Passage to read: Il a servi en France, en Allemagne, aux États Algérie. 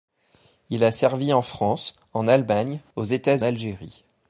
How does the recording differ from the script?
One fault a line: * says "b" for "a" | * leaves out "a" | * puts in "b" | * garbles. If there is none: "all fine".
all fine